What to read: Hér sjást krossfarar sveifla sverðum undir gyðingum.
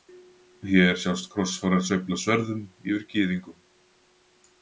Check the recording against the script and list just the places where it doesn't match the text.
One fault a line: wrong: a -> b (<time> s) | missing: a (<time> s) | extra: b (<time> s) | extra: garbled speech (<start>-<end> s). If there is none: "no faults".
wrong: undir -> yfir (2.9 s)